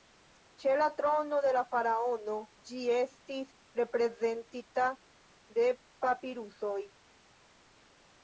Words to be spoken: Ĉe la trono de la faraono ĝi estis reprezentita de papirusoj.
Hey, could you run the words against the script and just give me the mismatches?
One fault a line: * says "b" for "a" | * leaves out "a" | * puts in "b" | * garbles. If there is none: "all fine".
all fine